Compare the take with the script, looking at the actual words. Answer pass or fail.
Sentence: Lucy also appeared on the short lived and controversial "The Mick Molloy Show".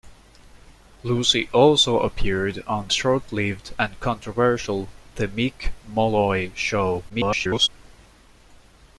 fail